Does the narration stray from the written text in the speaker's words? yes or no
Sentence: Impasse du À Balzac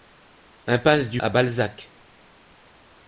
no